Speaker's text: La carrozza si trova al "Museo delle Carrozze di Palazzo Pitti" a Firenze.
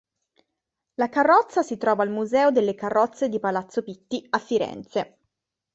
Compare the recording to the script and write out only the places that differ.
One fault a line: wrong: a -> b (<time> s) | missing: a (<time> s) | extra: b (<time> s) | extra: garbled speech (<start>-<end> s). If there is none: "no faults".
no faults